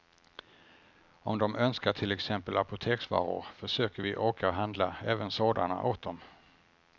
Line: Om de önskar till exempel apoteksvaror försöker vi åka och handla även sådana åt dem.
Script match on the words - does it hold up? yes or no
yes